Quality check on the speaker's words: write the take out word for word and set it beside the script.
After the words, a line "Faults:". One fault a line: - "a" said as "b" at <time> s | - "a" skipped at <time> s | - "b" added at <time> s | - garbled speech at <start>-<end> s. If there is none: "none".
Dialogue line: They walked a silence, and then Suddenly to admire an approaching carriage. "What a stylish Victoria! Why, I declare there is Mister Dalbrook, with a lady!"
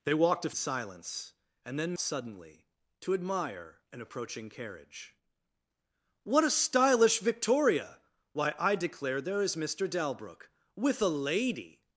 They walked a silence, and then Suddenly to admire an approaching carriage. "What a stylish Victoria! Why, I declare there is Mister Dalbrook, with a lady!"
Faults:
none